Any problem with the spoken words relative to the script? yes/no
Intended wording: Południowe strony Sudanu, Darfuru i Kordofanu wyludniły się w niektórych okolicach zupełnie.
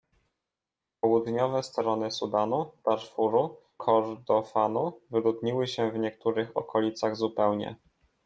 yes